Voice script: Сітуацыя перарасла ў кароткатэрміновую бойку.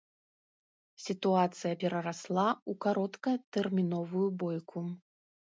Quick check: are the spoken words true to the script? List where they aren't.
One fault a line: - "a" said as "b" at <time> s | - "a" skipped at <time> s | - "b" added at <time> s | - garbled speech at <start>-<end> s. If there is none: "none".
none